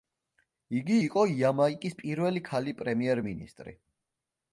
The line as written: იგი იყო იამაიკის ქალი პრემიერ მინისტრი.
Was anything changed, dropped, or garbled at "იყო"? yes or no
no